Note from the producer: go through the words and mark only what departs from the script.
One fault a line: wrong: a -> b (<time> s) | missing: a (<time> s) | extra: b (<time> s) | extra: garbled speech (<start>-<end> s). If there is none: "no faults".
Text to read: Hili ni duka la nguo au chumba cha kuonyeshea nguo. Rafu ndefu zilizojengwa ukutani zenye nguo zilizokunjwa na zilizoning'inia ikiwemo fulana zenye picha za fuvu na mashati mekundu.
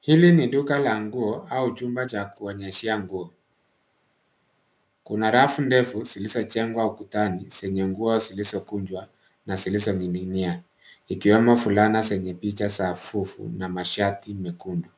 extra: Kuna (5.0 s)